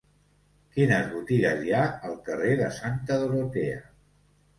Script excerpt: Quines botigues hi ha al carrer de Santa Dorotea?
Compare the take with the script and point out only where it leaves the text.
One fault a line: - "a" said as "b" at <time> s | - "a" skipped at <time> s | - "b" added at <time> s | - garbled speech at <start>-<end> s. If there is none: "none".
none